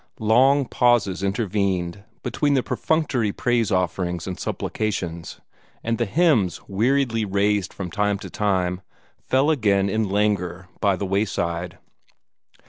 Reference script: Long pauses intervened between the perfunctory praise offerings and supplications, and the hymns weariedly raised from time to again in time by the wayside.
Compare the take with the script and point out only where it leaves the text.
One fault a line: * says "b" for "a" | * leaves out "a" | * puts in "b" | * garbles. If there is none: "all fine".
* puts in "time fell"
* says "languor" for "time"